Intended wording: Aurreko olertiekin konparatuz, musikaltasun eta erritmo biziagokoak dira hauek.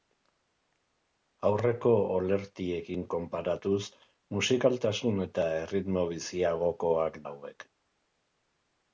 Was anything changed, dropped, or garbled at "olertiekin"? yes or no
no